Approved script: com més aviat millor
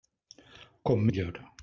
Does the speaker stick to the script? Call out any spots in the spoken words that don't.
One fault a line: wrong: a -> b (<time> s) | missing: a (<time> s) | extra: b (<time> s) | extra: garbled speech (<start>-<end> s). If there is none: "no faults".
missing: més aviat (1.1 s)